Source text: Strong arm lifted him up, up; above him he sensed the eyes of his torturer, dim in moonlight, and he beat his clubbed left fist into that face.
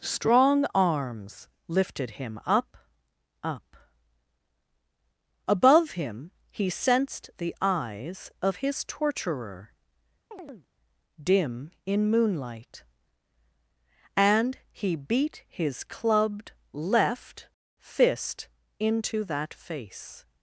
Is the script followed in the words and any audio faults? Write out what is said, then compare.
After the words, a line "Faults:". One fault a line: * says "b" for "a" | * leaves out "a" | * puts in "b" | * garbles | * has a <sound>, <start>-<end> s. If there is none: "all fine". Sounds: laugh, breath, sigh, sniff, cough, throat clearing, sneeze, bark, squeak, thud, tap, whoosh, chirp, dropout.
Strong arms lifted him up, up; above him he sensed the eyes of his torturer, dim in moonlight, and he beat his clubbed left fist into that face.
Faults:
* says "arms" for "arm"
* has a chirp, 10.3-10.7 s